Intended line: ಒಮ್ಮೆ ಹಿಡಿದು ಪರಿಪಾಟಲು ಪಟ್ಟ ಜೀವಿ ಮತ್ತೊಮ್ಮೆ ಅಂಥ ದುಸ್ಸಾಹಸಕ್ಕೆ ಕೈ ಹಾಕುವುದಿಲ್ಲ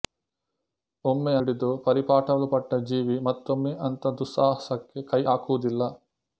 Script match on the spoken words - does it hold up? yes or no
yes